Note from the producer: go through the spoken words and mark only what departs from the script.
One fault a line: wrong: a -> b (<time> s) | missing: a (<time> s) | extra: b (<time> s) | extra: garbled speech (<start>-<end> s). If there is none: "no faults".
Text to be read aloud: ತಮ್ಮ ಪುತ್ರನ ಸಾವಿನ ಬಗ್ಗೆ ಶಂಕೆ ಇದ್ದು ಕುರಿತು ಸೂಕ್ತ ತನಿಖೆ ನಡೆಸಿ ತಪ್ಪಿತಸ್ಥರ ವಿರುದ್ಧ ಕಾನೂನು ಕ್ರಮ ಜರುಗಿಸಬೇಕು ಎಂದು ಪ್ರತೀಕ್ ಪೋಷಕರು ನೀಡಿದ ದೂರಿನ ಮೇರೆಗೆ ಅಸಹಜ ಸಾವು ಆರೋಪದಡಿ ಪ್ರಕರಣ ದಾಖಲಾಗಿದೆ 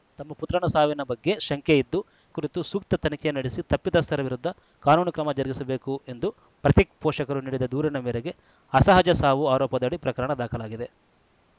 no faults